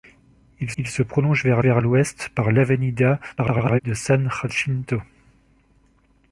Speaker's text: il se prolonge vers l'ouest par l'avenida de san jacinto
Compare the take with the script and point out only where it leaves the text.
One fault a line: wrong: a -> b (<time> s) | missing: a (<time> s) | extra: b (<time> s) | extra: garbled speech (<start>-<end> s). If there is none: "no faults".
extra: il (0.8 s)
extra: vers (1.6 s)
extra: garbled speech (3.4-3.8 s)